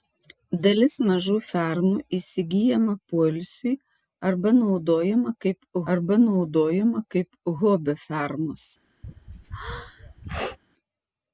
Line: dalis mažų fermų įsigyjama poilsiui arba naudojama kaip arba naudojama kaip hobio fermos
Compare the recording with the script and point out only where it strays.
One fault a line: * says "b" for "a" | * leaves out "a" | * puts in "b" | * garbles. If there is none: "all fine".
all fine